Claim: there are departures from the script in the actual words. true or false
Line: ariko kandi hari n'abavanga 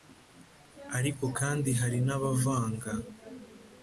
false